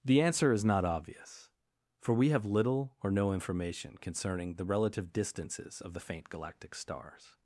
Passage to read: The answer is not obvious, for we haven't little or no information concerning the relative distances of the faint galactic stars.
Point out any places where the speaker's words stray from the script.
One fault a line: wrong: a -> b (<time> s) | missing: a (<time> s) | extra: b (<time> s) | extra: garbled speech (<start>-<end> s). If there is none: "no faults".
wrong: haven't -> have (2.3 s)